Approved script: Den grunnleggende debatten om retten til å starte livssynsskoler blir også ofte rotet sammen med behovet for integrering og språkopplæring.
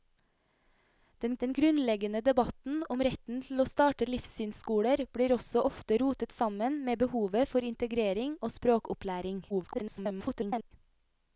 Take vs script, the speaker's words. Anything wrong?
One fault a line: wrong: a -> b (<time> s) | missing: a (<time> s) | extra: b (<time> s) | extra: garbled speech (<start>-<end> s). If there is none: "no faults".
extra: den (1.4 s)
extra: garbled speech (9.5-10.7 s)